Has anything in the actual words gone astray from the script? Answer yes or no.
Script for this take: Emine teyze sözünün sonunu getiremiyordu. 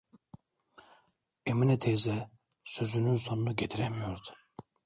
no